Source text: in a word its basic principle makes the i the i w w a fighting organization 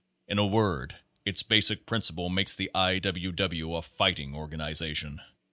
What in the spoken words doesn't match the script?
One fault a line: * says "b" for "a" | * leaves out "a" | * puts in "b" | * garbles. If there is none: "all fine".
* leaves out "the i"